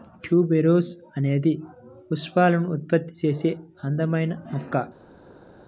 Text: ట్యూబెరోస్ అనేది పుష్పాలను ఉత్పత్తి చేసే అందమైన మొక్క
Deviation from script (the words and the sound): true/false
false